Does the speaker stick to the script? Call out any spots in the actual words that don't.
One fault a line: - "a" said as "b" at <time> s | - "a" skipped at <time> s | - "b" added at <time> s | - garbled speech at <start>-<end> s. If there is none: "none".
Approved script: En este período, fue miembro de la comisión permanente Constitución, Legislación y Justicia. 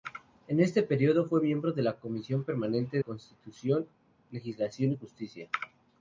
none